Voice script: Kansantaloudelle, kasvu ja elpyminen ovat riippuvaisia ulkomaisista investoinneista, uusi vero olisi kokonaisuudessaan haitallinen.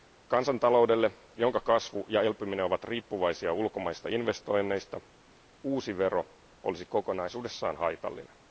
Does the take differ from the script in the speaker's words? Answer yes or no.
yes